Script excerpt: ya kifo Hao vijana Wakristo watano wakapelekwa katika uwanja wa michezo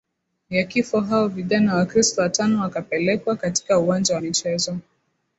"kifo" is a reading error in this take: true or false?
false